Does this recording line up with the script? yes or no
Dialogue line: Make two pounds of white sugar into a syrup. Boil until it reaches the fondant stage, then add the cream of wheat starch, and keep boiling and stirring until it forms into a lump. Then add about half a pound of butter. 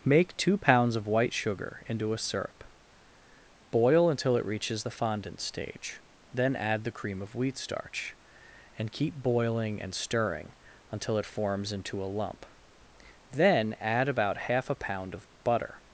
yes